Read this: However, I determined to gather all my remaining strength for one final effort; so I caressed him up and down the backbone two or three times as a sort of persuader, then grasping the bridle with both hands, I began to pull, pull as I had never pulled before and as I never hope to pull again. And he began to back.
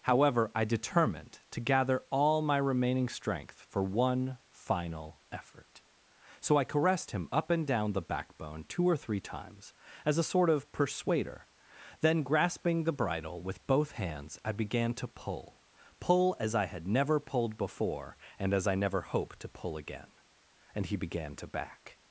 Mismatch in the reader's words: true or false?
false